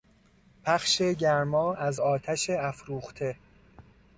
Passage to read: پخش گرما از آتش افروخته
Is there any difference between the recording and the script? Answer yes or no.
no